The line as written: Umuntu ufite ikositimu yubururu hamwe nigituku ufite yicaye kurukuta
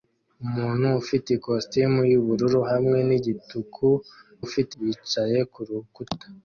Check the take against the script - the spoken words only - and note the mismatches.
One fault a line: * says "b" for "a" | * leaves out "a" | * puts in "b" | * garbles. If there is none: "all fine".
all fine